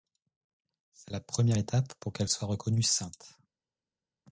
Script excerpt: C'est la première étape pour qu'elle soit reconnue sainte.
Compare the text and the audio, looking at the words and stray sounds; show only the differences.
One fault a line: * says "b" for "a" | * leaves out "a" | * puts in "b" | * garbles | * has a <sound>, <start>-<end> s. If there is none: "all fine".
all fine